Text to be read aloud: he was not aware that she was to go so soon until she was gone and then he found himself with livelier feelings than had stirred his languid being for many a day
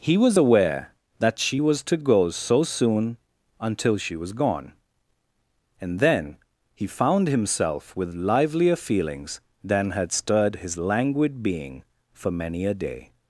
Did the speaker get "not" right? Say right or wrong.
wrong